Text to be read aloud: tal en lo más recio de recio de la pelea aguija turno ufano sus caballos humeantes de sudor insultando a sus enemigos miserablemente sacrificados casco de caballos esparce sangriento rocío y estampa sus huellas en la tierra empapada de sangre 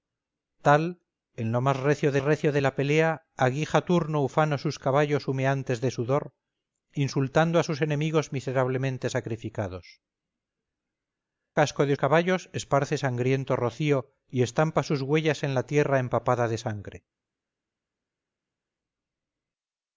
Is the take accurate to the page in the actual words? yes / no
yes